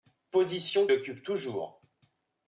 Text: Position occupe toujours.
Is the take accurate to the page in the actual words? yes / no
yes